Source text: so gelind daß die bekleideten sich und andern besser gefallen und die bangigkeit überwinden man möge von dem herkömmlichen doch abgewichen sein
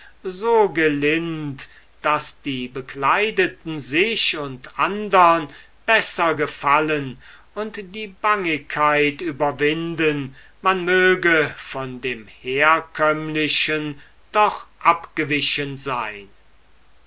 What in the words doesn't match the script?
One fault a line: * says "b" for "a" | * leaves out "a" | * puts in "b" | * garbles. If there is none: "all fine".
all fine